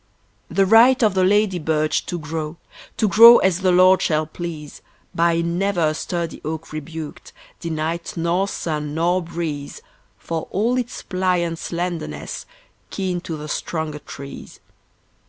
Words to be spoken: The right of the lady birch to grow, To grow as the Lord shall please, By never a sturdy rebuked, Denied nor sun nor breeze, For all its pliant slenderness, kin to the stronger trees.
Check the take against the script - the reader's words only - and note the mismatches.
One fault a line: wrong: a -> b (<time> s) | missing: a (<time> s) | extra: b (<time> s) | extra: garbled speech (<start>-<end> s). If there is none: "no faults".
extra: oak (6.4 s)